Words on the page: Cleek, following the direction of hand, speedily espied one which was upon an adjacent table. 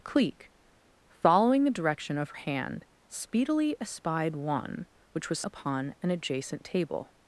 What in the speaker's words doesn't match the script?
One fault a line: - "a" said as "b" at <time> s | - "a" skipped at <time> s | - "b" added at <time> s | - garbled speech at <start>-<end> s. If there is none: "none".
none